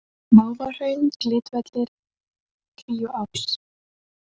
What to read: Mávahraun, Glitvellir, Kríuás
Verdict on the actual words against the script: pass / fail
pass